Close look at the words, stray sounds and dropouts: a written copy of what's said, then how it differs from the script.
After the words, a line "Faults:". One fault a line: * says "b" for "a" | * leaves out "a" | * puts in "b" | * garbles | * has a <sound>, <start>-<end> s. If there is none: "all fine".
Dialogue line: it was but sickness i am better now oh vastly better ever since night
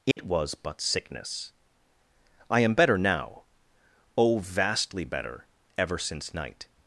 it was but sickness i am better now oh vastly better ever since night
Faults:
* has a dropout, 0.1-0.2 s